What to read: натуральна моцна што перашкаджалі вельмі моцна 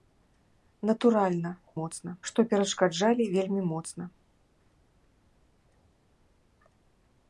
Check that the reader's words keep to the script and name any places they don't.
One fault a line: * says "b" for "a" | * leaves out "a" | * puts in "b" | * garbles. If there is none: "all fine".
all fine